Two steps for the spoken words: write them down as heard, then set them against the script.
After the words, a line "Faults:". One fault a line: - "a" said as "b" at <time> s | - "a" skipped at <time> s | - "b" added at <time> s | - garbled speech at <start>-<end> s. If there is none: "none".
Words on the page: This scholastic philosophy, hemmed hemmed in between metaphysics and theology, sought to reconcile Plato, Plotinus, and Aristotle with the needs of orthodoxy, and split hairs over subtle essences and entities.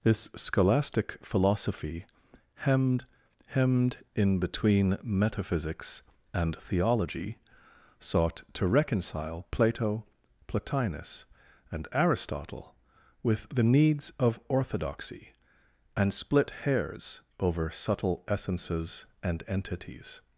This scholastic philosophy, hemmed hemmed in between metaphysics and theology, sought to reconcile Plato, Plotinus, and Aristotle with the needs of orthodoxy, and split hairs over subtle essences and entities.
Faults:
none